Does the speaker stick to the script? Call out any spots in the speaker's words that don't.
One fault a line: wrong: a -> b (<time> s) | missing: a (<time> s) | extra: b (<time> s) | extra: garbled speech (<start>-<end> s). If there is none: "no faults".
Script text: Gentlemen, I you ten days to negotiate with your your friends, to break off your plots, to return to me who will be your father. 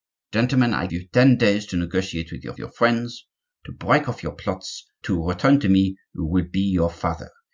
no faults